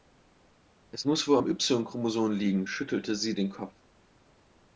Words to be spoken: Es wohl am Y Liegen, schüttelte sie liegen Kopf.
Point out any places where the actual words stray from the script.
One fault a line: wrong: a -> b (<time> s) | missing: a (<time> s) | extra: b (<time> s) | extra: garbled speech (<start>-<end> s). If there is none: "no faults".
extra: muss (1.1 s)
extra: Chromosom (1.8 s)
wrong: liegen -> den (3.3 s)